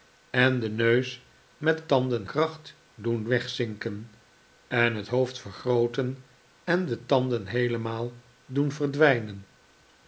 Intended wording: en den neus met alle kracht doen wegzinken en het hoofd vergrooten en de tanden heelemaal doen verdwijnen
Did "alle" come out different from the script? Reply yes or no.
yes